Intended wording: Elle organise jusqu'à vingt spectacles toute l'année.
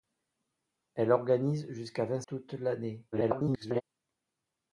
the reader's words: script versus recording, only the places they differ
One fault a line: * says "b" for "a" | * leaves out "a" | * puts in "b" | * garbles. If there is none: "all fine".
* leaves out "spectacles"
* garbles